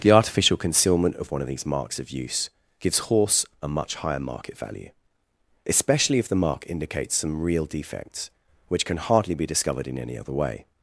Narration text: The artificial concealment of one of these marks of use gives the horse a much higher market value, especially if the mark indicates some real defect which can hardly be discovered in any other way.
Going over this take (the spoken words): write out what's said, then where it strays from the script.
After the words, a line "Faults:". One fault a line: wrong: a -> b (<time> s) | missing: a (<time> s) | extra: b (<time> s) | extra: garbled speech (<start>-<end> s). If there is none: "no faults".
The artificial concealment of one of these marks of use gives horse a much higher market value, especially if the mark indicates some real defects which can hardly be discovered in any other way.
Faults:
missing: the (3.0 s)
wrong: defect -> defects (7.6 s)